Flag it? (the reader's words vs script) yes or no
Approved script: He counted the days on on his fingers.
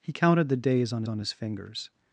no